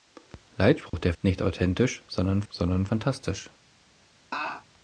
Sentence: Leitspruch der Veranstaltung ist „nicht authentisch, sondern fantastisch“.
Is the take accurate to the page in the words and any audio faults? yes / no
no